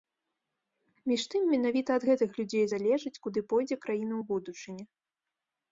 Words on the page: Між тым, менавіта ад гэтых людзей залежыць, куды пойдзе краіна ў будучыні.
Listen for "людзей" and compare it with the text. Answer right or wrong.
right